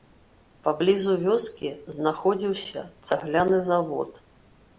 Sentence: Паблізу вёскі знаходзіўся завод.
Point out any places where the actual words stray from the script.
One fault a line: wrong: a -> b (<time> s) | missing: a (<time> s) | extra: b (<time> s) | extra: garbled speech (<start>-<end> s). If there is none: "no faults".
extra: цагляны (3.1 s)